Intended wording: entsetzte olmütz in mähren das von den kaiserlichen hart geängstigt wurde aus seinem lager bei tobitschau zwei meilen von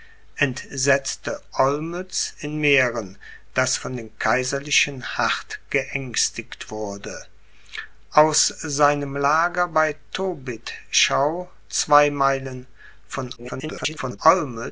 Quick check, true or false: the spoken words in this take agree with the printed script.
false